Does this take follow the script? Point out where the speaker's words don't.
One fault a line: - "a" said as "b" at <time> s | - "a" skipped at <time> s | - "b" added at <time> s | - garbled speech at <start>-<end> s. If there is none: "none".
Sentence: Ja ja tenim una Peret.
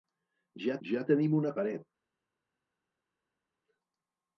none